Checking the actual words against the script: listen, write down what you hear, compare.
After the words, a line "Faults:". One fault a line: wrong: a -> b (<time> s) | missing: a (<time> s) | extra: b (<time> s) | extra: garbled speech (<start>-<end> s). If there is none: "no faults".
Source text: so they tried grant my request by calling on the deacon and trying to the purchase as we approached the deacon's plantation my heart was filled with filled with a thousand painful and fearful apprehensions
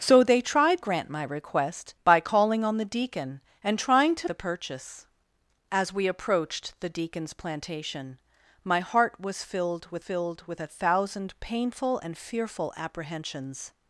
so they tried grant my request by calling on the deacon and trying to the purchase as we approached the deacon's plantation my heart was filled with filled with a thousand painful and fearful apprehensions
Faults:
no faults